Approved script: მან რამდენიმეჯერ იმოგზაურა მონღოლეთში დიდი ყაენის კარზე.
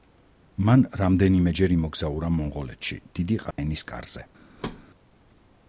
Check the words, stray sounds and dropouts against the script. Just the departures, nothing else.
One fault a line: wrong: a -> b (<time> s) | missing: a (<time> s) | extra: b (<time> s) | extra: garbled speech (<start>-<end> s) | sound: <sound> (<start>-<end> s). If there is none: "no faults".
sound: dropout (3.5-3.6 s)
sound: thud (4.6-4.8 s)